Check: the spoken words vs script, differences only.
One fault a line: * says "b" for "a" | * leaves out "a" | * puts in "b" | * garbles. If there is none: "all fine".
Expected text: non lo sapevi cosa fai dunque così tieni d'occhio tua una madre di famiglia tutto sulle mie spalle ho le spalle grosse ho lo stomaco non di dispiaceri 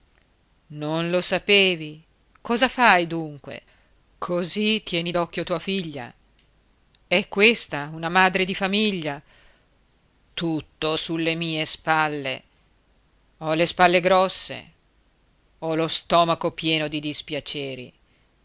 * puts in "figlia è questa"
* says "pieno" for "non"